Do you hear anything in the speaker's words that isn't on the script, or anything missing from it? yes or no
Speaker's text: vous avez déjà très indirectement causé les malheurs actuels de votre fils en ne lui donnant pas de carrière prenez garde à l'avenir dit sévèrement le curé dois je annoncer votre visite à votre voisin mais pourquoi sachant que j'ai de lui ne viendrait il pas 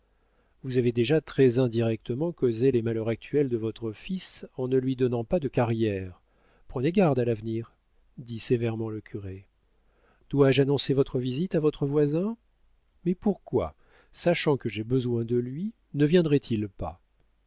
yes